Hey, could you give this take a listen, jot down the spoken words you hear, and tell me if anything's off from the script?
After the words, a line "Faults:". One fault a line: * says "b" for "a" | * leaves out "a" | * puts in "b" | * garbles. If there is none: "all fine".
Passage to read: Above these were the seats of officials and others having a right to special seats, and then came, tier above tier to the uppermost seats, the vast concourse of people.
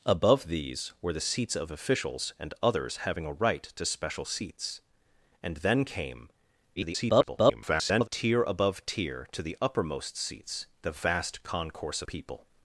Above these were the seats of officials and others having a right to special seats, and then came, [garbled] tier above tier to the uppermost seats, the vast concourse people.
Faults:
* garbles
* leaves out "of"